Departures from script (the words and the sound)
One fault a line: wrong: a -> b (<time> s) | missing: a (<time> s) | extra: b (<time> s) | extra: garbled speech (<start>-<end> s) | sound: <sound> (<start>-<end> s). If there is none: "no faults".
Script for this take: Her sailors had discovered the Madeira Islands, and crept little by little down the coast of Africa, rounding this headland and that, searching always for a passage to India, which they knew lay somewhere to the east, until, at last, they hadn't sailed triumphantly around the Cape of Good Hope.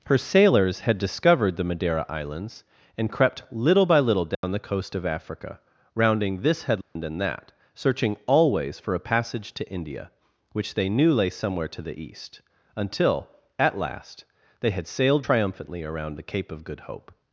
sound: dropout (4.3-4.4 s)
sound: dropout (6.8-7.0 s)
wrong: hadn't -> had (14.7 s)